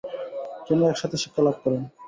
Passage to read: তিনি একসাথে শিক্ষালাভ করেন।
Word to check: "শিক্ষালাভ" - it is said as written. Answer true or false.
true